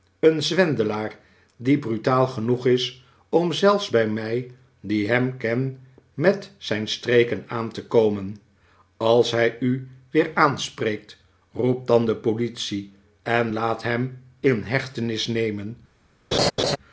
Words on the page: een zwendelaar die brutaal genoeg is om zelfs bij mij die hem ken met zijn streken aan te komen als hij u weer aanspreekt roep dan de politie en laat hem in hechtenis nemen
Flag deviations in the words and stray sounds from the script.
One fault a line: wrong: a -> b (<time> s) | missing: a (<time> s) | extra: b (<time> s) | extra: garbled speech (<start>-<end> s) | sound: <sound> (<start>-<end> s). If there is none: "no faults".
sound: laugh (16.3-16.8 s)